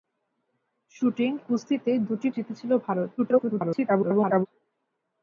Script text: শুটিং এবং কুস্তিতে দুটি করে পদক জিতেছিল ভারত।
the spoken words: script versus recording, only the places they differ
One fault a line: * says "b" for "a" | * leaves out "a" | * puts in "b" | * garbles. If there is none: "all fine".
* leaves out "এবং"
* leaves out "করে পদক"
* garbles